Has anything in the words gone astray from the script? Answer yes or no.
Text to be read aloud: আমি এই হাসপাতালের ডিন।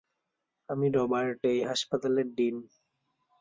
yes